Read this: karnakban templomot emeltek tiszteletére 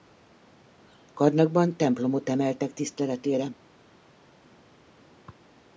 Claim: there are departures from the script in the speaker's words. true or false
false